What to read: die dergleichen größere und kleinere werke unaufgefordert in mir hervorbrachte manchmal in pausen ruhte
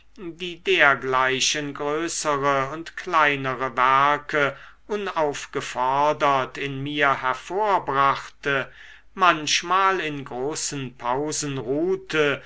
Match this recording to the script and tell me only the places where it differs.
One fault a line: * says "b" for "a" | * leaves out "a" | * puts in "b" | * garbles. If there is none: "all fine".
* puts in "großen"